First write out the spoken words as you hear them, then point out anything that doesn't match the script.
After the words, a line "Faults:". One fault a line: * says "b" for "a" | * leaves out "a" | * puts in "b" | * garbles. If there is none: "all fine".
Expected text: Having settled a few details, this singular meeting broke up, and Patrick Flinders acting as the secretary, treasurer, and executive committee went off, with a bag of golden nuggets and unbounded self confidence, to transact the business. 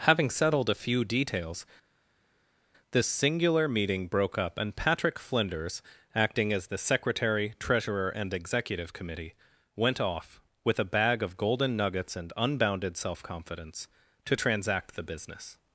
Having settled a few details, this singular meeting broke up, and Patrick Flinders acting as the secretary, treasurer, and executive committee went off, with a bag of golden nuggets and unbounded self confidence, to transact the business.
Faults:
all fine